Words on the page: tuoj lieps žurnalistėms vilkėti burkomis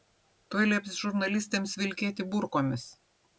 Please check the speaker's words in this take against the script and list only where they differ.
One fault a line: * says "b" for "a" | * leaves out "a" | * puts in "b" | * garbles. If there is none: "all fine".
all fine